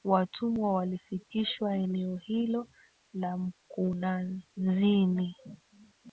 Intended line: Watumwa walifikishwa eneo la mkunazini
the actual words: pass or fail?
fail